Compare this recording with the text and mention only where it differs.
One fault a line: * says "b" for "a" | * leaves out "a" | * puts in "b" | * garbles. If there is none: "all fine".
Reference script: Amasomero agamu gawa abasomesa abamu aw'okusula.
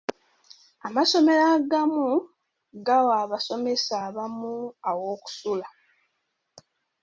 all fine